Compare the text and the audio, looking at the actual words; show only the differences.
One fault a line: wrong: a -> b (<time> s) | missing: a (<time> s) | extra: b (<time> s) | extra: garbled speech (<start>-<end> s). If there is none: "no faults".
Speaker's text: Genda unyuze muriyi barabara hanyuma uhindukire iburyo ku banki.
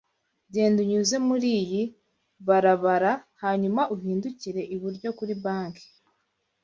wrong: ku -> kuri (5.2 s)